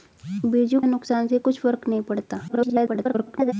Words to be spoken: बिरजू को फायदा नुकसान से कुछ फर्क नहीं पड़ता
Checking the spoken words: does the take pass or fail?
fail